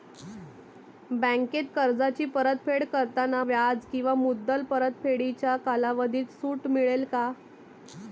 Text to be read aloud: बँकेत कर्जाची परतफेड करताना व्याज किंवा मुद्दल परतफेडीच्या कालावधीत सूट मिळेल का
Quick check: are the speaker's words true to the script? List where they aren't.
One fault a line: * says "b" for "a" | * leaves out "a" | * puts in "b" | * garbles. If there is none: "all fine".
all fine